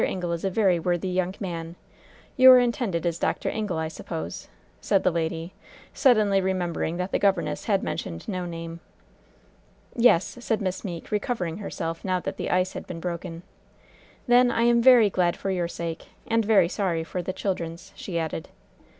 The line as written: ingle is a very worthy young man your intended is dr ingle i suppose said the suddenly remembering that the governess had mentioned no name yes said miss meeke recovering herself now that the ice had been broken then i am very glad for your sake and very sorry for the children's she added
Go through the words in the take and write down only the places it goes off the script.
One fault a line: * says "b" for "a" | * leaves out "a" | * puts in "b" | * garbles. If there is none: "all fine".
* puts in "lady"